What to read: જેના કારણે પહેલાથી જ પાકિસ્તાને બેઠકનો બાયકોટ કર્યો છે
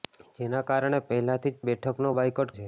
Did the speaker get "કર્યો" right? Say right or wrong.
wrong